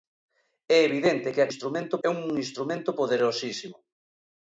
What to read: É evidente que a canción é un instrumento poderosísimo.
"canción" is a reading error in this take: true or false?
true